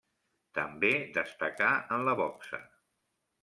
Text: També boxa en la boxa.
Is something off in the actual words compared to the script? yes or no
yes